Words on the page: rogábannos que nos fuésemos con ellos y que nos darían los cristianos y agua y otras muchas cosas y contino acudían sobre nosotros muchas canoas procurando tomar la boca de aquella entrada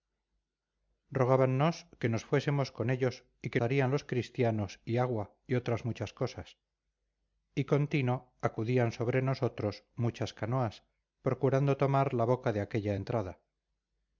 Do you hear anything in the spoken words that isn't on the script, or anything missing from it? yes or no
yes